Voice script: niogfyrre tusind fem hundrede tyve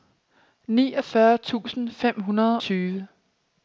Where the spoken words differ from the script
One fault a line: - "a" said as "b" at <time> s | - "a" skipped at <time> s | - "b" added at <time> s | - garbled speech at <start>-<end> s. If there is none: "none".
none